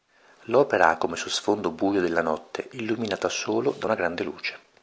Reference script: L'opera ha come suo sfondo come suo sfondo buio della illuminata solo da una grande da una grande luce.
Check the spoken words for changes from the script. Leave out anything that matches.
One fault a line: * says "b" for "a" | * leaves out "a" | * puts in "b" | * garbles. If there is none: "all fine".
* leaves out "come suo sfondo"
* puts in "notte"
* leaves out "da una grande"